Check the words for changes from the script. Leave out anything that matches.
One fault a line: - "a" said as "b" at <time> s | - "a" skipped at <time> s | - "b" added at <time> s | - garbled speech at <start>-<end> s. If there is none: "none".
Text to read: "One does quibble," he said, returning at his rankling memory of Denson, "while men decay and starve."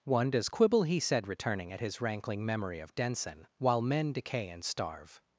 none